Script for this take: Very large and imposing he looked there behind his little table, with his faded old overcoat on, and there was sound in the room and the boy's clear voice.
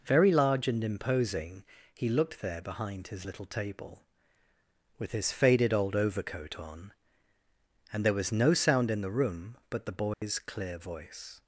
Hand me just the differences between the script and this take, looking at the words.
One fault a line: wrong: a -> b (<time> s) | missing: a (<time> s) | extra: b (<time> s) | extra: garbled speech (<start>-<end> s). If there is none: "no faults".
extra: no (8.3 s)
wrong: and -> but (9.7 s)